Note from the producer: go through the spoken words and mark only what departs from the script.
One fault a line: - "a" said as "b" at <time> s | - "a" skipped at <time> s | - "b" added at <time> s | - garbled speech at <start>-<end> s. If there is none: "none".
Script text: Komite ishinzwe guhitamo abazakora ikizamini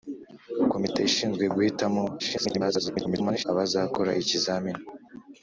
- garbled speech at 2.2-3.4 s